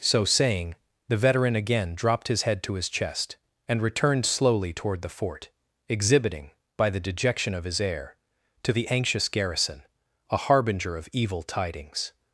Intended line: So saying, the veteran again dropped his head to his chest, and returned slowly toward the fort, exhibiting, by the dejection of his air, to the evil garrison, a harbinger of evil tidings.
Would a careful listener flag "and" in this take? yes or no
no